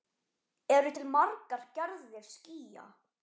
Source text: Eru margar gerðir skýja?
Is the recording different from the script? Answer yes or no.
yes